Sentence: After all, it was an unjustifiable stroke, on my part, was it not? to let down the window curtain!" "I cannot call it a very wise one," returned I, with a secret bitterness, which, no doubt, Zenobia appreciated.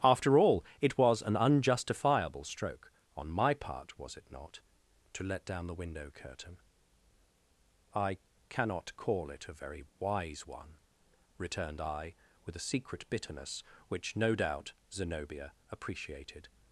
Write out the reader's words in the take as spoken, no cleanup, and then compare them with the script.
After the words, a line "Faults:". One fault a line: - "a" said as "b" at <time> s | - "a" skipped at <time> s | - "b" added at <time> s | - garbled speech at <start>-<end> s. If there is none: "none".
After all, it was an unjustifiable stroke, on my part, was it not? to let down the window curtain!" "I cannot call it a very wise one," returned I, with a secret bitterness, which, no doubt, Zenobia appreciated.
Faults:
none